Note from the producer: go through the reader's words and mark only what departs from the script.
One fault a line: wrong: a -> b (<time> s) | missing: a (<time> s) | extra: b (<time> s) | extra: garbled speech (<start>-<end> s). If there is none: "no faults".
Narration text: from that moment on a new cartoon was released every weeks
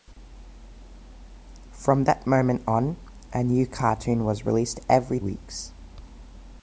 no faults